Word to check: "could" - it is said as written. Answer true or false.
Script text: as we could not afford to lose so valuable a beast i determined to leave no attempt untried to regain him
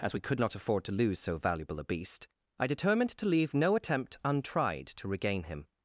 true